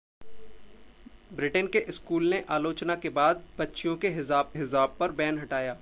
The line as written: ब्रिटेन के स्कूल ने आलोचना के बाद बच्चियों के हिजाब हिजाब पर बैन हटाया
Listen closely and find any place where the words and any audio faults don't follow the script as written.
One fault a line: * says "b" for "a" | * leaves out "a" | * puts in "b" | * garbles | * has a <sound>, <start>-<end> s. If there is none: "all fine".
all fine